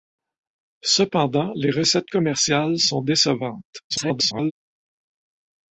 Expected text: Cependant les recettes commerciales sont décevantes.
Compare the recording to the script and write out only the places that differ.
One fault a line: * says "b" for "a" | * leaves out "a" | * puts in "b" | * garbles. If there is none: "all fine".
* garbles